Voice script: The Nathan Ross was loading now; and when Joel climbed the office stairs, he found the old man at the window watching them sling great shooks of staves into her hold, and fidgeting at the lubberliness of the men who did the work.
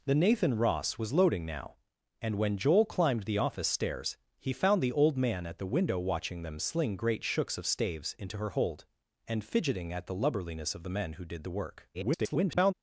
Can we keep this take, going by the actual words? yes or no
no